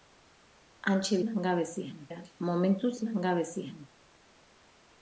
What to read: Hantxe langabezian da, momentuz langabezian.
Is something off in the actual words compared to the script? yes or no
no